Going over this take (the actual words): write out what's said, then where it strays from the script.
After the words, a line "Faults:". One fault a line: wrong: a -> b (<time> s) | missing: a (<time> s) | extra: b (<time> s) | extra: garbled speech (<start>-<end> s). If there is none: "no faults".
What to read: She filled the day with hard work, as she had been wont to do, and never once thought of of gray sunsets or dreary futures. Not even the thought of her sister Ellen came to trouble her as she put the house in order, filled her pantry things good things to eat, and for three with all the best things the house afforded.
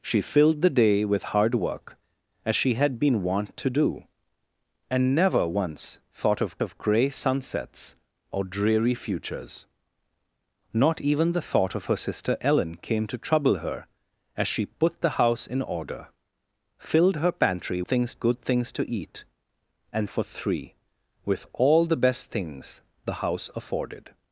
She filled the day with hard work, as she had been wont to do, and never once thought of of gray sunsets or dreary futures. Not even the thought of her sister Ellen came to trouble her as she put the house in order, filled her pantry things good things to eat, and for three with all the best things the house afforded.
Faults:
no faults